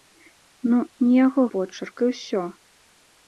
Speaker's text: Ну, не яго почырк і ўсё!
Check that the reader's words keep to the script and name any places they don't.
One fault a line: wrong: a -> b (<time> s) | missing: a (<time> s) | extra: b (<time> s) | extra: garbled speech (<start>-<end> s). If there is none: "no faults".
no faults